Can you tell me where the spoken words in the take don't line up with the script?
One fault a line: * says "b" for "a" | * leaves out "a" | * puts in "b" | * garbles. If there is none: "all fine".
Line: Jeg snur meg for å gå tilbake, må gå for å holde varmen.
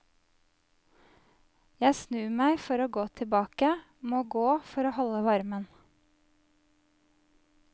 all fine